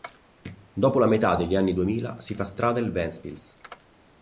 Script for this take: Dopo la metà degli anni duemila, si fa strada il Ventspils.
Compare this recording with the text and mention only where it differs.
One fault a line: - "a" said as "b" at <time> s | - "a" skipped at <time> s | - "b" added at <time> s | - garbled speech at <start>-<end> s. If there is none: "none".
none